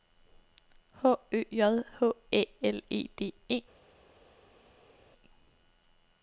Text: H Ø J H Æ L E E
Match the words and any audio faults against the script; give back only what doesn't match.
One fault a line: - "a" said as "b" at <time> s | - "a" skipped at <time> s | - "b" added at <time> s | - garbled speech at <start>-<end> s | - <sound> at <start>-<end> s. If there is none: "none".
- "D" added at 3.2 s